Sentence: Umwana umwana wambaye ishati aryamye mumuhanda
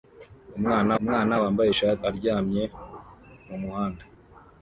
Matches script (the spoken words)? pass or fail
pass